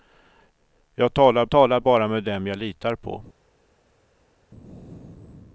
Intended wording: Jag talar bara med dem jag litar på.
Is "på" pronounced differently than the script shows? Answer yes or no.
no